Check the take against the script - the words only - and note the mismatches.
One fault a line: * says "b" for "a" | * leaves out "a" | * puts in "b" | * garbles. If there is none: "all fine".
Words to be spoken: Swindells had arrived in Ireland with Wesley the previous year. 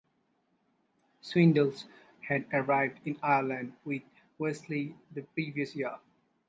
all fine